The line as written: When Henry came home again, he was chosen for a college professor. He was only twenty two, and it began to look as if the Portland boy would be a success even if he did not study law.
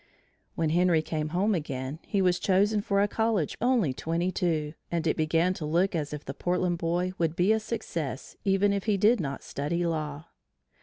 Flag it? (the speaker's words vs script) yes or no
yes